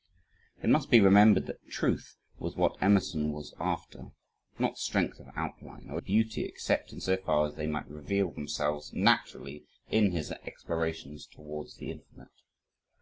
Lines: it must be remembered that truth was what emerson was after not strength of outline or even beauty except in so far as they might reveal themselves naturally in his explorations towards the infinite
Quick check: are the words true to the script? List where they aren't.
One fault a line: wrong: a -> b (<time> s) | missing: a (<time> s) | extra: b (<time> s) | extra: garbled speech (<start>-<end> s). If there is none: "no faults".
missing: even (6.0 s)